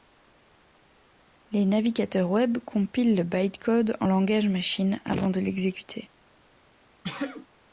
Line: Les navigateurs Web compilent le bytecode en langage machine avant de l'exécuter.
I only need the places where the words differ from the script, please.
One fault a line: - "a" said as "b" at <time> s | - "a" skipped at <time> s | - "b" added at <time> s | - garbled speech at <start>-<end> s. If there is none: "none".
none